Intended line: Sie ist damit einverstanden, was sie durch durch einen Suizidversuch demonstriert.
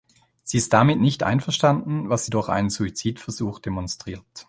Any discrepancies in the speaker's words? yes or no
yes